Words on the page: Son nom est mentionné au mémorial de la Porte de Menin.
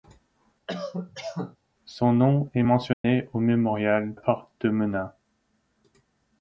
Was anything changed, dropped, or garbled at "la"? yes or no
yes